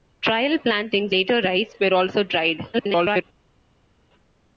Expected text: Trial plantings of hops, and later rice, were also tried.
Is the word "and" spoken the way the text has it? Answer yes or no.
no